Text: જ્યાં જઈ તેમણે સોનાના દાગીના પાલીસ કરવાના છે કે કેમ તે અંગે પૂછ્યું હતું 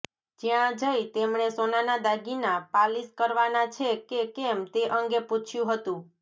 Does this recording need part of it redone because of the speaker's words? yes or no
no